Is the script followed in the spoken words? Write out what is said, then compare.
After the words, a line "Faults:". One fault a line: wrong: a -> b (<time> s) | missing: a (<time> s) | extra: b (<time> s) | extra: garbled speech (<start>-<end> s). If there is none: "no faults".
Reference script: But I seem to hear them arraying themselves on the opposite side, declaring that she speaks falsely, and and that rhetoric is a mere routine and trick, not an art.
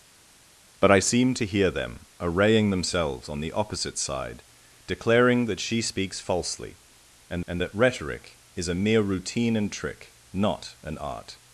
But I seem to hear them arraying themselves on the opposite side, declaring that she speaks falsely, and and that rhetoric is a mere routine and trick, not an art.
Faults:
no faults